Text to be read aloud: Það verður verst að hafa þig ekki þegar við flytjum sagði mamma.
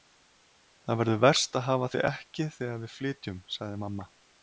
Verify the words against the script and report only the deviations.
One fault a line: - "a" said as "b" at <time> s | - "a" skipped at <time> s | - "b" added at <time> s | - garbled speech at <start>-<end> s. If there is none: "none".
none